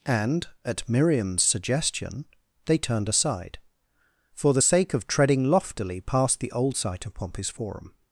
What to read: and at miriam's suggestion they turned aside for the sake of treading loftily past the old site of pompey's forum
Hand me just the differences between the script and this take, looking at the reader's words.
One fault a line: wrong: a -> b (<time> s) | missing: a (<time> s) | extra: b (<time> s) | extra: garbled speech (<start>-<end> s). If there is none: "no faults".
no faults